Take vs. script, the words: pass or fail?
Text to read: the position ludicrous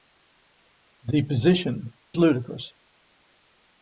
pass